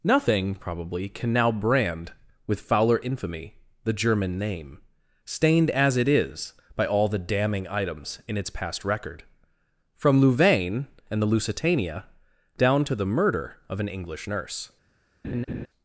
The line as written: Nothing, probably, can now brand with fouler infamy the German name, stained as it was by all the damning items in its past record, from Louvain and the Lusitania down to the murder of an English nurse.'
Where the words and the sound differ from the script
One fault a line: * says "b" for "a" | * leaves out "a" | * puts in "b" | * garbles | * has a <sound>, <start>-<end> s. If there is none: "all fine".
* says "is" for "was"
* has a laugh, 15.2-15.7 s